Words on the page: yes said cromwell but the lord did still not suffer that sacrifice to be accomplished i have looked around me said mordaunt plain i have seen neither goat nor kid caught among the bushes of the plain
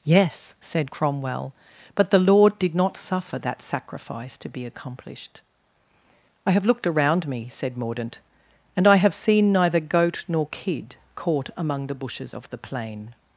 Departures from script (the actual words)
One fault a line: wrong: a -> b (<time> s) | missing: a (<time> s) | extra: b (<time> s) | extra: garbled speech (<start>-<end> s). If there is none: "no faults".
missing: still (2.7 s)
wrong: plain -> and (8.8 s)